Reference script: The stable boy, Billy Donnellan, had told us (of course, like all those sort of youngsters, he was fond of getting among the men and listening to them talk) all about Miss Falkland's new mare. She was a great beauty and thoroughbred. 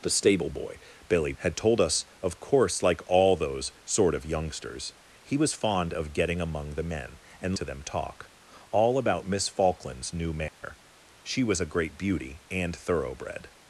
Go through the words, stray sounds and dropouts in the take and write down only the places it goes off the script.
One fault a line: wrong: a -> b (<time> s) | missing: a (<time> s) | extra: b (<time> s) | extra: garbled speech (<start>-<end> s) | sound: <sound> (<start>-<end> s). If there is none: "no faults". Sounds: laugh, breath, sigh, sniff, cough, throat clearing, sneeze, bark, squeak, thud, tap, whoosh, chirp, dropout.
missing: Donnellan (1.3 s)
missing: listening (7.5 s)
sound: dropout (10.5-10.6 s)